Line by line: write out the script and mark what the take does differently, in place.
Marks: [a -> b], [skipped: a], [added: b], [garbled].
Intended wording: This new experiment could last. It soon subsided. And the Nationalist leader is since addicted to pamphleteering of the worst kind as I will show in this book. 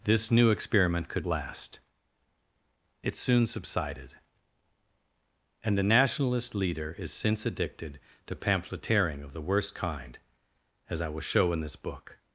This new experiment could last. It soon subsided. And the Nationalist leader is since addicted to pamphleteering of the worst kind as I will show in this book.